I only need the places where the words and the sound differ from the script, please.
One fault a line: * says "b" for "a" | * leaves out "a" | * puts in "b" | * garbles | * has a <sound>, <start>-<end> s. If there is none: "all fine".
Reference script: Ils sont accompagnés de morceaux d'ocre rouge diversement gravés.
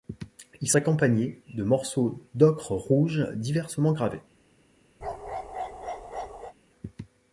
* leaves out "sont"
* has a bark, 5.0-6.5 s